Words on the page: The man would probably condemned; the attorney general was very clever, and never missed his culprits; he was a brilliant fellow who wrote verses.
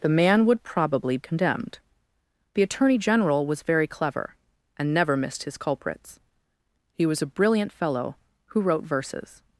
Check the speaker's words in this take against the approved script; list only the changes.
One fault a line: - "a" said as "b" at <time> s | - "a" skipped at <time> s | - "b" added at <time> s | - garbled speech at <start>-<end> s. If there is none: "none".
none